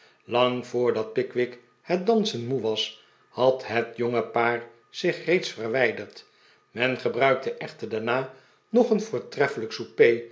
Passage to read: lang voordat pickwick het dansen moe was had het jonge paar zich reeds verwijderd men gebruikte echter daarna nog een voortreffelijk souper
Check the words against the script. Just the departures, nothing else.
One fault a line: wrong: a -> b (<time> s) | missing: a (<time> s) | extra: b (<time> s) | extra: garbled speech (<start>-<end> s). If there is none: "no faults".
no faults